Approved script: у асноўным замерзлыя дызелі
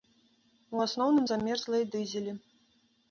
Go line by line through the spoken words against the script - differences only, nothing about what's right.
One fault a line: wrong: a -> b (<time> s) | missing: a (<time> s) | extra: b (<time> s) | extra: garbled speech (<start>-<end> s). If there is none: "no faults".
no faults